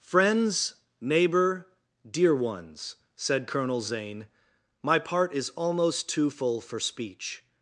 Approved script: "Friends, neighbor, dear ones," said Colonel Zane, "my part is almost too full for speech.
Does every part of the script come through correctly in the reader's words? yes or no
yes